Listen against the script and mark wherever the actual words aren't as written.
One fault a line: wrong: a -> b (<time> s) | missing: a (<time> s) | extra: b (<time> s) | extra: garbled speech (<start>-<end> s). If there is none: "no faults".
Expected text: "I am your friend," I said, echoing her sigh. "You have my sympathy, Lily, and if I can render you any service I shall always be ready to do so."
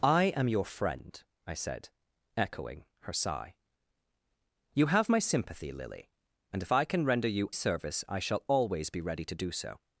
missing: any (7.5 s)